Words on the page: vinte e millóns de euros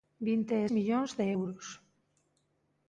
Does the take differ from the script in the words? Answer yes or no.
no